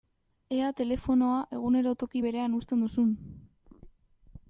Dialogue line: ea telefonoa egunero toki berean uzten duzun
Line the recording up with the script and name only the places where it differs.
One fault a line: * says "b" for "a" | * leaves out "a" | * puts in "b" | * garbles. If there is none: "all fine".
all fine